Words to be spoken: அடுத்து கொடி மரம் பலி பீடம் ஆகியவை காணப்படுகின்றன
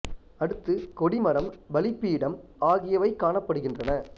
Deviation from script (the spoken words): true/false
false